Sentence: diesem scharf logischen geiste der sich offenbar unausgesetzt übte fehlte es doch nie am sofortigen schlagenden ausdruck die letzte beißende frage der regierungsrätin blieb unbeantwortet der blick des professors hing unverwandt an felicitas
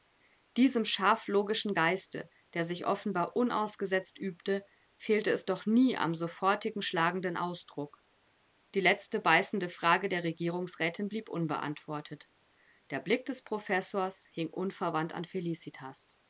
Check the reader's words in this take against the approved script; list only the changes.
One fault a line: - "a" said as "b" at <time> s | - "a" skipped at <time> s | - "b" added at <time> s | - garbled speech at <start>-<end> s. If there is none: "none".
none